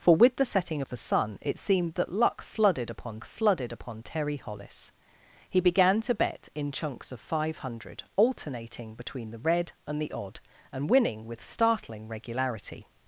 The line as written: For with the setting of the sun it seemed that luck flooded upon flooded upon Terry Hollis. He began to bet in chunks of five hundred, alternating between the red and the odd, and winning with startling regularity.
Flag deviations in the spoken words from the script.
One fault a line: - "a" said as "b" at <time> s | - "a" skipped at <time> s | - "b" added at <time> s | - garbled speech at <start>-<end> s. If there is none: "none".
none